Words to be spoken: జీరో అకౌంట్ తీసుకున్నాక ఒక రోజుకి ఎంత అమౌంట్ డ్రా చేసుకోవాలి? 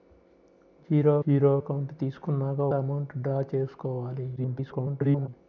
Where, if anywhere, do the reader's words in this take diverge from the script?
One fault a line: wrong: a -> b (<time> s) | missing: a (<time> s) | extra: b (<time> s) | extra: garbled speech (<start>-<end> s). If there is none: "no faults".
extra: జీరో (1.3 s)
missing: ఒక రోజుకి ఎంత (2.6 s)
extra: garbled speech (4.4-5.3 s)